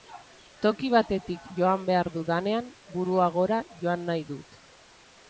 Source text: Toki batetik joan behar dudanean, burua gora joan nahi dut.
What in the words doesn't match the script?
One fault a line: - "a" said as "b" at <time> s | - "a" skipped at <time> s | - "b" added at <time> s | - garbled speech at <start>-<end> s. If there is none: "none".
none